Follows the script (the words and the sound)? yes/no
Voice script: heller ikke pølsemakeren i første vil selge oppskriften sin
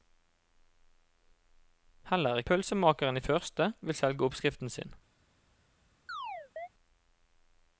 no